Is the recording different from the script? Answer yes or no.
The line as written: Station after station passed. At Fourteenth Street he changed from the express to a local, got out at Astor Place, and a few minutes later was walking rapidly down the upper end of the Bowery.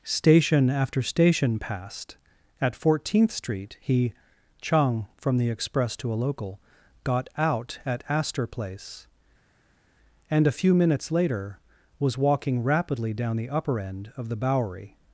yes